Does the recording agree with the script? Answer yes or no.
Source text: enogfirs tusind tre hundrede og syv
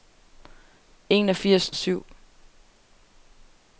no